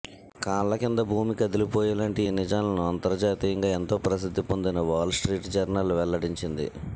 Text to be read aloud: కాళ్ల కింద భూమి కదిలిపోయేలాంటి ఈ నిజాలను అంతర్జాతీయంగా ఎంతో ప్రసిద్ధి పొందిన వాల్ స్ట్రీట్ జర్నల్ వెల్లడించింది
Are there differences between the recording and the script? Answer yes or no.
no